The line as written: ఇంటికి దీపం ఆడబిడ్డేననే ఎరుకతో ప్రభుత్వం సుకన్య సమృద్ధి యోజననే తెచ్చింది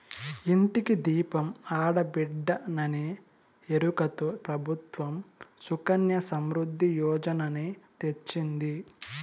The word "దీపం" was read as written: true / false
true